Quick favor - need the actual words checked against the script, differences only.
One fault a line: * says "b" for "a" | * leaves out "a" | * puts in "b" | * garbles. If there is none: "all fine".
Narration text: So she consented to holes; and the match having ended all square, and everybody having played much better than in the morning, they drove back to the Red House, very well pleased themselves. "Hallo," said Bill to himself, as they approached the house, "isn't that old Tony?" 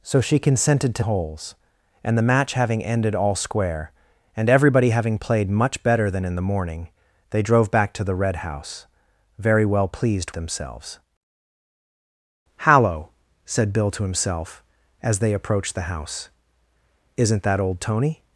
all fine